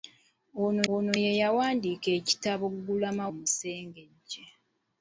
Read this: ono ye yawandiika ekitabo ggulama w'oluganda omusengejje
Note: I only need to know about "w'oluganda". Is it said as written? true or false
false